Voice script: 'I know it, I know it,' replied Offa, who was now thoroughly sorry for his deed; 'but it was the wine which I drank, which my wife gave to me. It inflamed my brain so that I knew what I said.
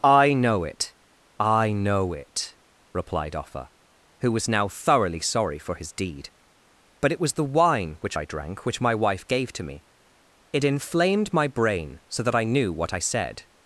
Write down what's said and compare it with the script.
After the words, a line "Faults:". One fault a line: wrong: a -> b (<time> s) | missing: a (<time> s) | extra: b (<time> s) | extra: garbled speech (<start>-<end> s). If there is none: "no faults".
'I know it, I know it,' replied Offa, who was now thoroughly sorry for his deed; 'but it was the wine which I drank, which my wife gave to me. It inflamed my brain so that I knew what I said.
Faults:
no faults